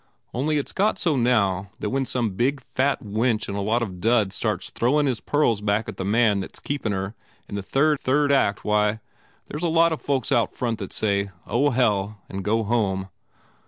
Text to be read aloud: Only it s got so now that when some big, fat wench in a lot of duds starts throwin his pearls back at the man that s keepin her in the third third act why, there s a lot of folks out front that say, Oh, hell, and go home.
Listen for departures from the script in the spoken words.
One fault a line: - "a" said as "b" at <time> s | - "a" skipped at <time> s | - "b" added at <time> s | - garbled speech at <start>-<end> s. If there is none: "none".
none